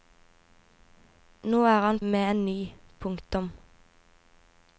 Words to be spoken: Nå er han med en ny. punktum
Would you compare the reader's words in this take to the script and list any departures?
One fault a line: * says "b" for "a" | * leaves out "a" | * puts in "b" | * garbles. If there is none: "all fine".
all fine